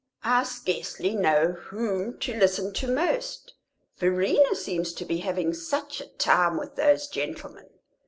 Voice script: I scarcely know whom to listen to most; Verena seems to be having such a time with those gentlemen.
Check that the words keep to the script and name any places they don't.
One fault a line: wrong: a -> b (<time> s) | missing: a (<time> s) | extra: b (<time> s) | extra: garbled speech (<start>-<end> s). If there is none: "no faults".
no faults